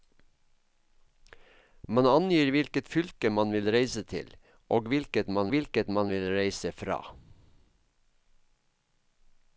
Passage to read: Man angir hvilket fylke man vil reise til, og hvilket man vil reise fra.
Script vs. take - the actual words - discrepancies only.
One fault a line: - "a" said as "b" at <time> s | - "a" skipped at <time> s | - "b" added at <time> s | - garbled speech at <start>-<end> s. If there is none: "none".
- "hvilket man" added at 5.5 s